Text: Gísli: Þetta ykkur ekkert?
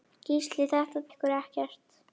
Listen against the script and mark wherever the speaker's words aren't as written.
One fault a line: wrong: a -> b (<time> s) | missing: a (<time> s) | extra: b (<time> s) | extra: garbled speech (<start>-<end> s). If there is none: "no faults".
no faults